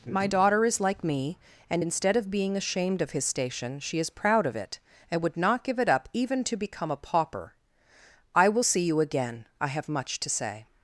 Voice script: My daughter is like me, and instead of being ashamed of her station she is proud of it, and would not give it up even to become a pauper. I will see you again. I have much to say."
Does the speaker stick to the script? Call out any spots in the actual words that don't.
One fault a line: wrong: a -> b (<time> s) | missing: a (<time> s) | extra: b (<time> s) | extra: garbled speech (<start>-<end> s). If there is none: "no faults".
wrong: her -> his (3.1 s)